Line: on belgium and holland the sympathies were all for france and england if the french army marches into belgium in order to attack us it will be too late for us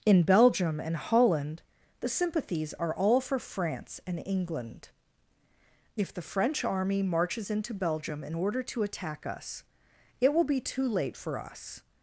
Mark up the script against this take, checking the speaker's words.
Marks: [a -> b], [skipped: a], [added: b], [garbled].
[on -> in] belgium and holland the sympathies [were -> are] all for france and england if the french army marches into belgium in order to attack us it will be too late for us